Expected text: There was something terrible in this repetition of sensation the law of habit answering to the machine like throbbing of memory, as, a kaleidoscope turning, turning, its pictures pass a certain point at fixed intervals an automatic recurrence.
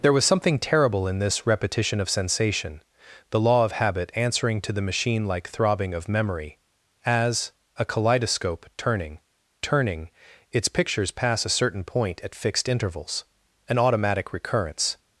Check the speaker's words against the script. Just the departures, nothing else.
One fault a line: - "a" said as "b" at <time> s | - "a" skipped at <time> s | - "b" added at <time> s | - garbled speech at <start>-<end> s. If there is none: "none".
none